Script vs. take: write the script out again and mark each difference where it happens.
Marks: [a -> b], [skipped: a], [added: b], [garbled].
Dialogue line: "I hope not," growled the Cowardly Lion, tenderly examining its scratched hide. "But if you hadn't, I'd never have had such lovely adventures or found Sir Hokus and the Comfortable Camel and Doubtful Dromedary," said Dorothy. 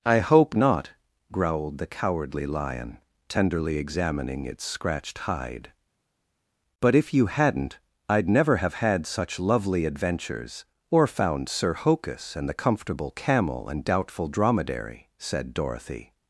"I hope not," growled the Cowardly Lion, tenderly examining its scratched hide. "But if you hadn't, I'd never have had such lovely adventures or found Sir Hokus and the Comfortable Camel and Doubtful Dromedary," said Dorothy.